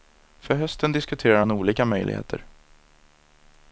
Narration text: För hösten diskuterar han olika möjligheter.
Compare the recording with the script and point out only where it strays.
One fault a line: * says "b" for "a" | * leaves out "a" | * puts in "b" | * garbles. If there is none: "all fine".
all fine